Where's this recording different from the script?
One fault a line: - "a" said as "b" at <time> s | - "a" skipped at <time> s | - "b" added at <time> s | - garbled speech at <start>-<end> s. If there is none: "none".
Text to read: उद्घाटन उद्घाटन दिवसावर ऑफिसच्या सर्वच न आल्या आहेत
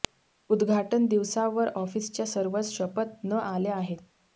- "उद्घाटन" skipped at 1.1 s
- "शपथ" added at 2.7 s